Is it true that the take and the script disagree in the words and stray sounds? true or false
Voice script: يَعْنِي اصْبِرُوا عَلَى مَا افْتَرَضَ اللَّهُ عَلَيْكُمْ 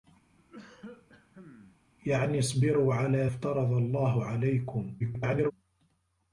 true